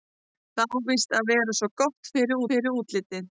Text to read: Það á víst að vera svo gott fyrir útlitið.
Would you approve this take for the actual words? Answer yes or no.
no